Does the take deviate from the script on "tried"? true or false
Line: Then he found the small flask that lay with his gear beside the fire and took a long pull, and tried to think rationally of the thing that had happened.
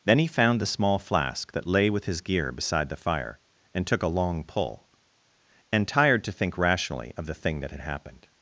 true